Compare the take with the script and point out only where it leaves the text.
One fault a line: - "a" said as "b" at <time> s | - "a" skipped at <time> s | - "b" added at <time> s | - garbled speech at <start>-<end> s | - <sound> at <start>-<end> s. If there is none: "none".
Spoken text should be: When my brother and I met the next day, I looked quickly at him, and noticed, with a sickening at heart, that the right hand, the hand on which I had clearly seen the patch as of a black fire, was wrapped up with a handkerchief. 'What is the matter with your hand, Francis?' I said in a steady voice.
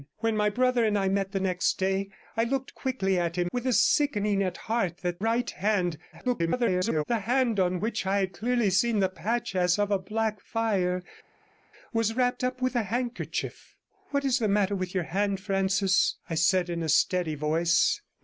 - "and noticed" skipped at 3.5 s
- "the" skipped at 5.2 s
- garbled speech at 6.1-7.0 s